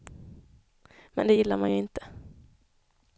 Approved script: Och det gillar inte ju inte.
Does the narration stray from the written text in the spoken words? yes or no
yes